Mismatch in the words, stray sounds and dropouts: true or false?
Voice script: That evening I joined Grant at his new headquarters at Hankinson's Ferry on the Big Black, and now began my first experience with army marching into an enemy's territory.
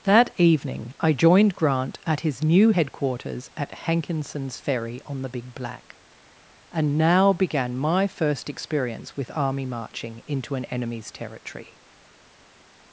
false